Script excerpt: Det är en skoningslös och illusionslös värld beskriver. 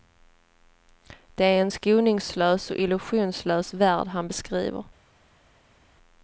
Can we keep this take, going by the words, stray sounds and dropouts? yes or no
no